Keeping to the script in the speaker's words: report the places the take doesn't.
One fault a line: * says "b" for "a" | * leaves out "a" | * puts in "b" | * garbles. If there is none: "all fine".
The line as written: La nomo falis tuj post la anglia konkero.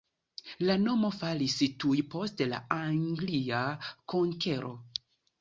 all fine